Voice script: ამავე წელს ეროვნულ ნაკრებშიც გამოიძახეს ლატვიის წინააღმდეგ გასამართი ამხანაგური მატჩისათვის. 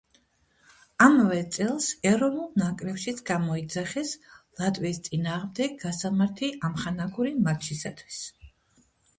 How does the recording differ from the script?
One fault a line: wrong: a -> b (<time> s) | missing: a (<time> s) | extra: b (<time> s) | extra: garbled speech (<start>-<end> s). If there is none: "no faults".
no faults